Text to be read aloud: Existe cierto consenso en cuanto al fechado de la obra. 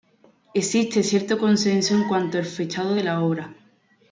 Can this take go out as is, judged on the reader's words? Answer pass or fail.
pass